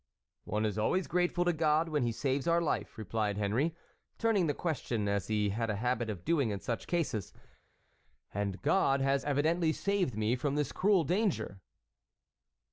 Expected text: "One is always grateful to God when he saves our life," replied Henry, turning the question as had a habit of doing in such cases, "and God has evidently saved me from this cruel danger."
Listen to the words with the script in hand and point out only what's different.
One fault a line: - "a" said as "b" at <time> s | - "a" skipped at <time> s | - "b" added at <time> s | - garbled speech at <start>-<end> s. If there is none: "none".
- "he" added at 5.3 s